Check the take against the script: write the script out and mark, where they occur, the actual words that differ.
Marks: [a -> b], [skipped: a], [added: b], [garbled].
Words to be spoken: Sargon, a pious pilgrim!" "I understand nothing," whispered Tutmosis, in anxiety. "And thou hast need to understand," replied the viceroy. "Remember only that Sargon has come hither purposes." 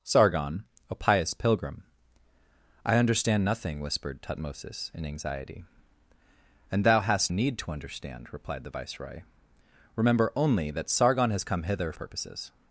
Sargon, a pious pilgrim!" "I understand nothing," whispered Tutmosis, in anxiety. "And thou hast need to understand," replied the viceroy. "Remember only that Sargon has come hither purposes."